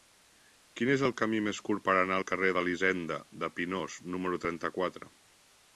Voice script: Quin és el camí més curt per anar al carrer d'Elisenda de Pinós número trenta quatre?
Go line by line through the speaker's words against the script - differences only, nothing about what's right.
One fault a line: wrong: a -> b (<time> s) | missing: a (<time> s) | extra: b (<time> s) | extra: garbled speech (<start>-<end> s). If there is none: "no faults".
no faults